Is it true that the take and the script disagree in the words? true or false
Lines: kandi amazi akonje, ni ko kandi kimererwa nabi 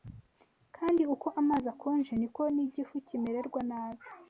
true